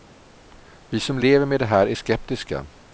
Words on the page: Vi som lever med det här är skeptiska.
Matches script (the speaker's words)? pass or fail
pass